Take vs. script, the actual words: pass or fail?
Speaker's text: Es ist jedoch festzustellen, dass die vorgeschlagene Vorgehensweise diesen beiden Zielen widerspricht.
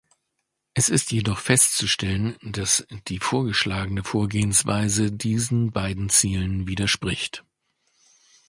pass